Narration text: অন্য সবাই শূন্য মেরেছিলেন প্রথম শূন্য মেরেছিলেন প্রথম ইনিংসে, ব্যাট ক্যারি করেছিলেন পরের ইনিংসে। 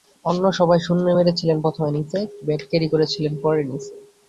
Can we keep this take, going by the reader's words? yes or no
no